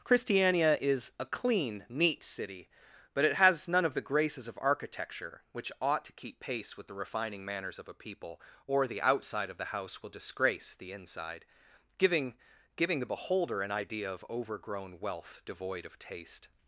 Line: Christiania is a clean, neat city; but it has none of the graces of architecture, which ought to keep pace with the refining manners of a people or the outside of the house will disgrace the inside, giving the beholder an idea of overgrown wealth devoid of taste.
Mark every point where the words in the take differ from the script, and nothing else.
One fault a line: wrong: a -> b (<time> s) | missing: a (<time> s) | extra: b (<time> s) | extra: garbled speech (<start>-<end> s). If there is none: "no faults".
extra: giving (12.8 s)